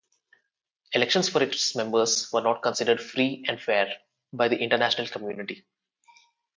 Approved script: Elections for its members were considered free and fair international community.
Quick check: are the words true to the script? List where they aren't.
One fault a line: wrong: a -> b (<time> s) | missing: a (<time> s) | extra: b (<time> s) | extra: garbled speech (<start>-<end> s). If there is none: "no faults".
extra: not (2.4 s)
extra: by the (4.3 s)